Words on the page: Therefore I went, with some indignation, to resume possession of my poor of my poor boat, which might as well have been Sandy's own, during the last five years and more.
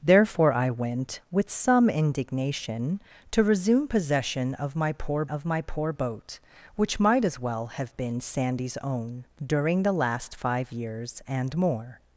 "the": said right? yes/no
yes